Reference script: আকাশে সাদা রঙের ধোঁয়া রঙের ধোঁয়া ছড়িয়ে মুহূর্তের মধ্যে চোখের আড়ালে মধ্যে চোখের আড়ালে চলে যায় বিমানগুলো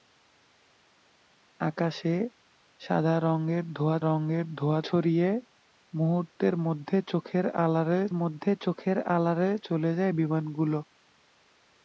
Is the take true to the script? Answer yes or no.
yes